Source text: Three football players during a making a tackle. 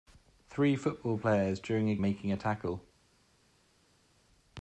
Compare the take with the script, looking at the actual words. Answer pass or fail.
pass